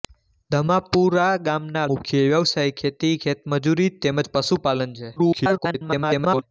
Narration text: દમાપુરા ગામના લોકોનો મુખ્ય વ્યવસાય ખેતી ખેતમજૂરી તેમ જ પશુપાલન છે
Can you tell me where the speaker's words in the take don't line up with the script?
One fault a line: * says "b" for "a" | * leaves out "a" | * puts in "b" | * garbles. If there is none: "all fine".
* leaves out "લોકોનો"
* garbles